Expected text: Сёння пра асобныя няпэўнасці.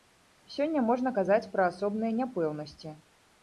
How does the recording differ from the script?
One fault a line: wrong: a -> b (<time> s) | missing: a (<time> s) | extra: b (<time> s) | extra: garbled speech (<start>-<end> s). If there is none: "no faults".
extra: можна казаць (0.9 s)